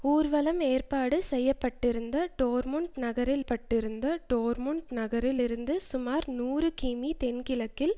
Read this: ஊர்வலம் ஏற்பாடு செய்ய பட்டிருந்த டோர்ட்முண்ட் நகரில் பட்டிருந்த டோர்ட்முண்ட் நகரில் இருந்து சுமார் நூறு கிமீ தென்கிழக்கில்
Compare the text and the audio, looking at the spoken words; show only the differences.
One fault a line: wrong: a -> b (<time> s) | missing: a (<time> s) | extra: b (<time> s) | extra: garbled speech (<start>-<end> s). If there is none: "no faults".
no faults